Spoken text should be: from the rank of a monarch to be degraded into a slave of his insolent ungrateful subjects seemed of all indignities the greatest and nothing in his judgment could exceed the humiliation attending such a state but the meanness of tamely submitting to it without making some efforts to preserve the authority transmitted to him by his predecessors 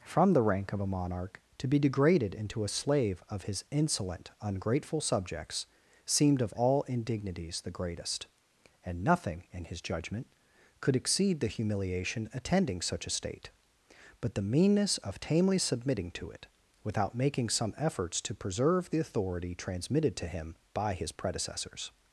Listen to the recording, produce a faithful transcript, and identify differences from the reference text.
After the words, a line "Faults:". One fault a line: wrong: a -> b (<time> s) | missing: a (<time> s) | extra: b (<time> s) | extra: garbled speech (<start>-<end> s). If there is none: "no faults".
from the rank of a monarch to be degraded into a slave of his insolent ungrateful subjects seemed of all indignities the greatest and nothing in his judgment could exceed the humiliation attending such a state but the meanness of tamely submitting to it without making some efforts to preserve the authority transmitted to him by his predecessors
Faults:
no faults